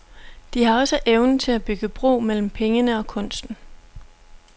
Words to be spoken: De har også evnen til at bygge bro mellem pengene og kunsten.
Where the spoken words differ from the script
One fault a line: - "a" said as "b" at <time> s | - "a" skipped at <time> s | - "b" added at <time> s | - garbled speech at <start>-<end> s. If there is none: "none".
none